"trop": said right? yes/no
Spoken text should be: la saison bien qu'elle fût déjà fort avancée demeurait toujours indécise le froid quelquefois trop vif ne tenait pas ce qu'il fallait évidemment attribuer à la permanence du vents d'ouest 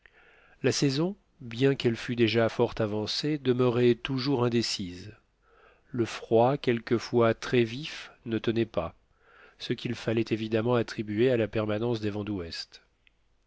no